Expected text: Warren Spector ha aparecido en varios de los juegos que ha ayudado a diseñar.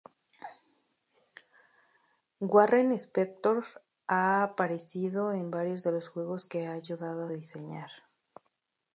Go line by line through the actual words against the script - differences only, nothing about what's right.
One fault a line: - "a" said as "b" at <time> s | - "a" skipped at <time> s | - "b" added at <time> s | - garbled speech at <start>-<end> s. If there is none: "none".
none